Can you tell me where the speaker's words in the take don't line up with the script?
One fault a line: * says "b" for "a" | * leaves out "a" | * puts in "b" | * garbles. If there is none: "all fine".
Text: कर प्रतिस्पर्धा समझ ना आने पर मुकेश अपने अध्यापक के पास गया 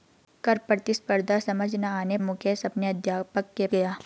* leaves out "पर"
* leaves out "पास"